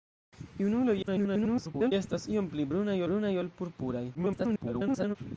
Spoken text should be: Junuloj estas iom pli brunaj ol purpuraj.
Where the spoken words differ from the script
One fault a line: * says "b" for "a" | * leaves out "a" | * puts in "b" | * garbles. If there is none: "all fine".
* garbles
* puts in "brunaj"
* garbles